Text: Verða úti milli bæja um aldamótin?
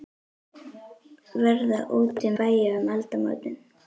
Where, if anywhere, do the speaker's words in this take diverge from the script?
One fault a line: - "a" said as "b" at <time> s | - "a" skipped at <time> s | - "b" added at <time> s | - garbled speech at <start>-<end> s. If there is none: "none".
- "milli" skipped at 2.3 s